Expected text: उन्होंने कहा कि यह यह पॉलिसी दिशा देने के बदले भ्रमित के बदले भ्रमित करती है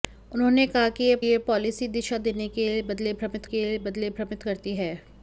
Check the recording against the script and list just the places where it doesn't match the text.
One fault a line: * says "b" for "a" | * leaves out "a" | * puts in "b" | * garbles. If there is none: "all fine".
all fine